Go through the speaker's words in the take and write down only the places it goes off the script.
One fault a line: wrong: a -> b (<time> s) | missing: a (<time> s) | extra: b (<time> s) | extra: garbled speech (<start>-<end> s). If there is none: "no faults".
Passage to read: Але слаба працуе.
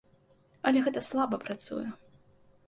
extra: гэта (0.9 s)